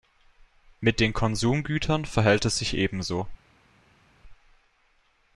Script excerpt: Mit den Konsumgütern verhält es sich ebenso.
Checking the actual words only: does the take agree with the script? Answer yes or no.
yes